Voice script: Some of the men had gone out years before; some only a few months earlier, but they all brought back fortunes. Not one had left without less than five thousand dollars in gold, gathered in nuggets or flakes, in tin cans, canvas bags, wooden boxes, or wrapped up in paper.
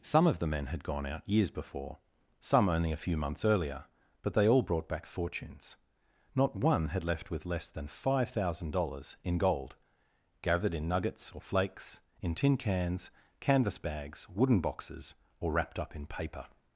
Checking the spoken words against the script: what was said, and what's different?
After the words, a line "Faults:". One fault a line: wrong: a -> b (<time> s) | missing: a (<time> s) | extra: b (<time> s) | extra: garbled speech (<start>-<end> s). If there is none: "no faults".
Some of the men had gone out years before; some only a few months earlier, but they all brought back fortunes. Not one had left with less than five thousand dollars in gold, gathered in nuggets or flakes, in tin cans, canvas bags, wooden boxes, or wrapped up in paper.
Faults:
wrong: without -> with (7.3 s)